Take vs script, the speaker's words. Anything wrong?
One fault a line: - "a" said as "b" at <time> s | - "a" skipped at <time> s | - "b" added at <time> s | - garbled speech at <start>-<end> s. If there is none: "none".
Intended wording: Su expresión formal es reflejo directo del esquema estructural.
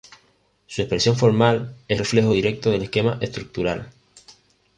none